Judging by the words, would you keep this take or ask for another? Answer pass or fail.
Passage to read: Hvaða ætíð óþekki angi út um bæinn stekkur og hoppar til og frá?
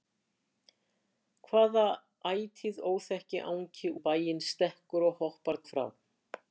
fail